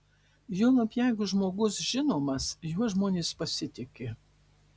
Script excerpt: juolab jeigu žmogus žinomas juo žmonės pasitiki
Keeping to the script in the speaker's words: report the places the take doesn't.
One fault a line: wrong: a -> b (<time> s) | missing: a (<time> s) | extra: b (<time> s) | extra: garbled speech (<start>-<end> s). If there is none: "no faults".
no faults